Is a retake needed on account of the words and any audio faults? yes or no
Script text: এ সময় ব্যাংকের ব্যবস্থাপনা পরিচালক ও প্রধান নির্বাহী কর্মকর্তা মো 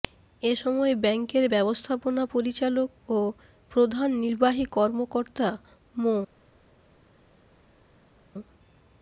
no